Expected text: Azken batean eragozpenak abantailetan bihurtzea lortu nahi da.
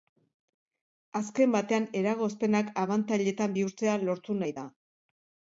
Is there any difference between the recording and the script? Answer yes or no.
no